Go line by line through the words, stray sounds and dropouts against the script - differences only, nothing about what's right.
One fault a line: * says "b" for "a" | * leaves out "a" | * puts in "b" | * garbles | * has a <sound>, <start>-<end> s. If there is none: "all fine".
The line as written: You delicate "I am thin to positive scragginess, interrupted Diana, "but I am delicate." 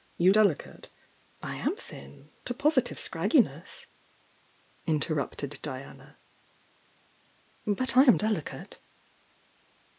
all fine